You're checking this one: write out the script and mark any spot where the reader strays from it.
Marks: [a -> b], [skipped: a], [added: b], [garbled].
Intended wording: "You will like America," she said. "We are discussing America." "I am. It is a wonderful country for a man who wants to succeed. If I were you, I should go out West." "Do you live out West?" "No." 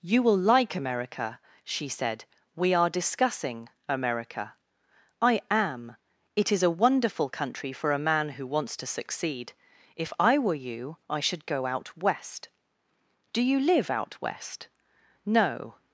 "You will like America," she said. "We are discussing America." "I am. It is a wonderful country for a man who wants to succeed. If I were you, I should go out West." "Do you live out West?" "No."